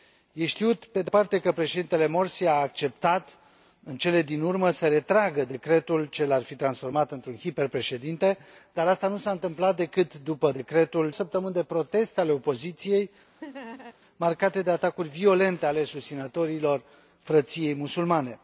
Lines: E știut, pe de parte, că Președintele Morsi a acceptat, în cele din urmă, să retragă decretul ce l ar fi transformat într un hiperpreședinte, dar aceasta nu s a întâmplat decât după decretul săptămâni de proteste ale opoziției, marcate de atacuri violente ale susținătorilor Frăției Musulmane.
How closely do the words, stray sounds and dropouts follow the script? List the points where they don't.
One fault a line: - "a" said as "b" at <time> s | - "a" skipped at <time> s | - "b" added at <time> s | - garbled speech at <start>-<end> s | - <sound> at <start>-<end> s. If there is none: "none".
- laugh at 13.4-14.0 s